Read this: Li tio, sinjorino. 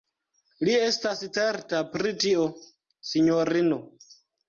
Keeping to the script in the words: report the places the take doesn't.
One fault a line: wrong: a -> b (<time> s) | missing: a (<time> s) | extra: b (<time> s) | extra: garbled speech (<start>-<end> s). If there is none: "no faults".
extra: estas certa pri (0.8 s)